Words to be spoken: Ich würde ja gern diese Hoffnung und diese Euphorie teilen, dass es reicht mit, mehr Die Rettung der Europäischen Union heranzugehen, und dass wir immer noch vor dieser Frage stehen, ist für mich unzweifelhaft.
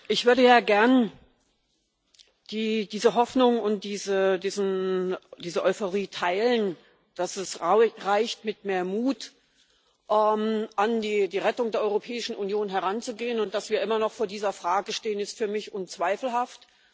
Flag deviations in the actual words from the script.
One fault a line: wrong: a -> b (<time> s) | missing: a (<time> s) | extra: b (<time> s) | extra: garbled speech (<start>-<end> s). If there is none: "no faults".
extra: Mut an (8.8 s)